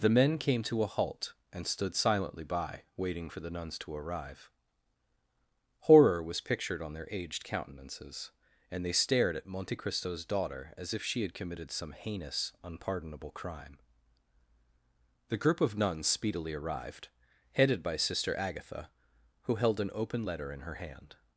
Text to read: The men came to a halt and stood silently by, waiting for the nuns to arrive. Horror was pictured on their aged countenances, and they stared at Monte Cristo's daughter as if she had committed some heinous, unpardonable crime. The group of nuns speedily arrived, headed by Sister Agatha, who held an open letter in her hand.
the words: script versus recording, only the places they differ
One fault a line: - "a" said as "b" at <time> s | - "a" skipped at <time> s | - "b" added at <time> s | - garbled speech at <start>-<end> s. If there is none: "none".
none